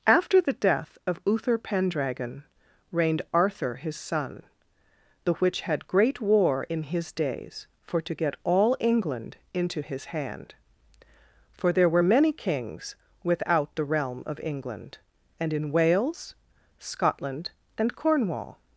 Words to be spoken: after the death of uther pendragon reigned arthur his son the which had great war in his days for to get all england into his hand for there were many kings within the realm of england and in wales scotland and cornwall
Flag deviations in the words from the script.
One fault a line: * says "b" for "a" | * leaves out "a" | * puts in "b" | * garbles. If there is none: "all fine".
* says "without" for "within"